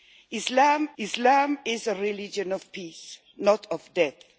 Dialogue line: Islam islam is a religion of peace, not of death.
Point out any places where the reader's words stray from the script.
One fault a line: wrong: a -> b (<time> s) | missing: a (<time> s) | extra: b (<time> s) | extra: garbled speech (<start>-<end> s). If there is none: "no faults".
no faults